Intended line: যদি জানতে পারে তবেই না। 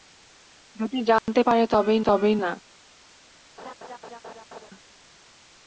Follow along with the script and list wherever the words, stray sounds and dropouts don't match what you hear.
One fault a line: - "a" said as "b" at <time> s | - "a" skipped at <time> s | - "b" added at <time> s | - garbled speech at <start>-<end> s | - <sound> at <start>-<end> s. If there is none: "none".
- dropout at 1.2-1.3 s
- "তবেই" added at 2.0 s
- laugh at 3.6-4.7 s